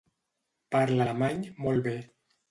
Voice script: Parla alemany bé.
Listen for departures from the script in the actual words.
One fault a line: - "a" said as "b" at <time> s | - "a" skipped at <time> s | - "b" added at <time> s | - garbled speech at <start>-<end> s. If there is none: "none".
- "molt" added at 1.6 s